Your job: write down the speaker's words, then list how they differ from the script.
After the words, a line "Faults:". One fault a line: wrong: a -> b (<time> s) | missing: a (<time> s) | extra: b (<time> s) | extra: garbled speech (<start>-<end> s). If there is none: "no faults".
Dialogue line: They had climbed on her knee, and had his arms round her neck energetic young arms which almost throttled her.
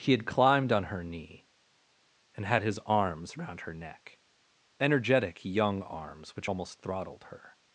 He had climbed on her knee, and had his arms round her neck energetic young arms which almost throttled her.
Faults:
wrong: They -> He (0.0 s)